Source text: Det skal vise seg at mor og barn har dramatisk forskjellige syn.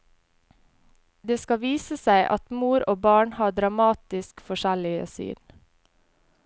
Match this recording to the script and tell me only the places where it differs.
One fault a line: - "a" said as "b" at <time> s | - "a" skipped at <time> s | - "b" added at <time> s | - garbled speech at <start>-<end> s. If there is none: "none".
none